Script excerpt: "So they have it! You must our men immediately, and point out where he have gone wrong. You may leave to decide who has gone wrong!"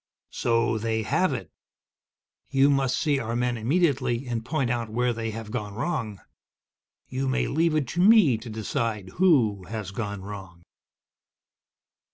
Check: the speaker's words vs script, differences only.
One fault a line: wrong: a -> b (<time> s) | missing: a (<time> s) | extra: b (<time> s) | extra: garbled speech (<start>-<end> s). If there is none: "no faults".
extra: see (3.0 s)
wrong: he -> they (5.1 s)
extra: it to me (7.8 s)